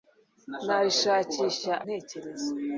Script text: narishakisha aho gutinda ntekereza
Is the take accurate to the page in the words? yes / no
no